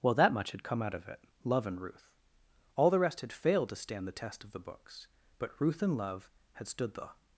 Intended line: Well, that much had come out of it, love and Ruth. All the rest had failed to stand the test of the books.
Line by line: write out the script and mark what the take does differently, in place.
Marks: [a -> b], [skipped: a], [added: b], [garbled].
Well, that much had come out of it, love and Ruth. All the rest had failed to stand the test of the books. [added: But Ruth and love had stood the]